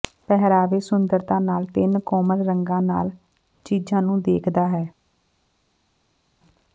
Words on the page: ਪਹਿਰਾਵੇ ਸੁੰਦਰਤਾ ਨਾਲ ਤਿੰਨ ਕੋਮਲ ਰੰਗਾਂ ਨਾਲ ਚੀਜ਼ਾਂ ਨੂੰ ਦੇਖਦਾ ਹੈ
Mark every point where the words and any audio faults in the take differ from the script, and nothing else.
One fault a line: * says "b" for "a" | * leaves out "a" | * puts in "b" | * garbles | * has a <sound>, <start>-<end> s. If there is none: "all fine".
all fine